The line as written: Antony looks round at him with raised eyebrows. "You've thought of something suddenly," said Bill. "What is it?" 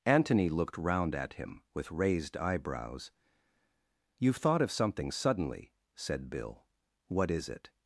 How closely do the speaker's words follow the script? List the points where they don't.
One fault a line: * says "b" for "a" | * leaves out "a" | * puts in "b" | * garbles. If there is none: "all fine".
* says "looked" for "looks"